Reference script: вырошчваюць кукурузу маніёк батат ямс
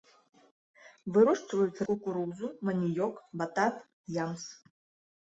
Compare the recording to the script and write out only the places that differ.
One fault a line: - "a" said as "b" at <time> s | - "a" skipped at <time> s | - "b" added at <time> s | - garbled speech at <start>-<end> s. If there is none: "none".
none